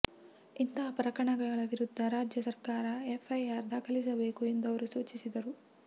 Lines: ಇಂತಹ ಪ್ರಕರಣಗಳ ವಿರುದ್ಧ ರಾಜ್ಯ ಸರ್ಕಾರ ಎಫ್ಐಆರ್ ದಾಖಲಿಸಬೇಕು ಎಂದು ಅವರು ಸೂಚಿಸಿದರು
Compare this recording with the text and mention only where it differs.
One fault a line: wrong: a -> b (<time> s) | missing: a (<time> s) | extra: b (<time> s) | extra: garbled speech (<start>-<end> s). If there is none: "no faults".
no faults